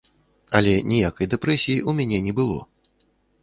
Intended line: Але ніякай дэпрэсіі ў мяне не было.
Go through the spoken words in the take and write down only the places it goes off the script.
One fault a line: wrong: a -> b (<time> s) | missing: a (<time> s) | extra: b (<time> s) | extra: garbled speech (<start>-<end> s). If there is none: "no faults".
no faults